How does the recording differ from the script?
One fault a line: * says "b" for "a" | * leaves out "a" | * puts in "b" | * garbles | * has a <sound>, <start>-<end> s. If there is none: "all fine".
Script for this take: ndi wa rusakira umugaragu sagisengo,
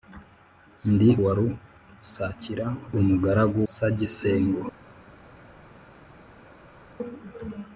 all fine